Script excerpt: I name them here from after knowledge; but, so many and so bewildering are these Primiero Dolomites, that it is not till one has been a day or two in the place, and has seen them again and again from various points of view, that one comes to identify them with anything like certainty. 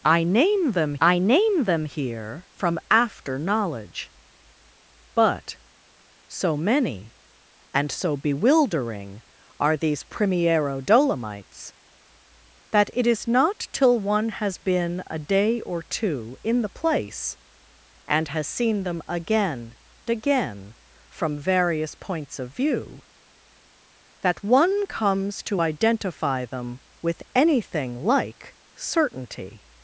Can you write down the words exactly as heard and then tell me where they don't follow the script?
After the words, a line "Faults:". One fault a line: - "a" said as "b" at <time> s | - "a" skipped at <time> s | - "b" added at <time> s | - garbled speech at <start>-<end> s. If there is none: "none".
I name them I name them here from after knowledge; but, so many and so bewildering are these Primiero Dolomites, that it is not till one has been a day or two in the place, and has seen them again again from various points of view, that one comes to identify them with anything like certainty.
Faults:
- "I name them" added at 1.0 s
- "and" skipped at 19.8 s